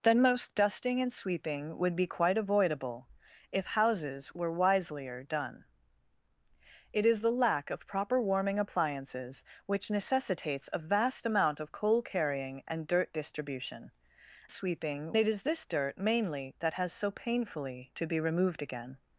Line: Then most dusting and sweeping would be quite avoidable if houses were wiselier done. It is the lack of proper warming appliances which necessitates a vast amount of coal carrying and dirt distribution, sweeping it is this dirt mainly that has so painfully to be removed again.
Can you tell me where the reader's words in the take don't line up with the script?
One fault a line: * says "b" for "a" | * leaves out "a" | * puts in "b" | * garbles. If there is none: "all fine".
all fine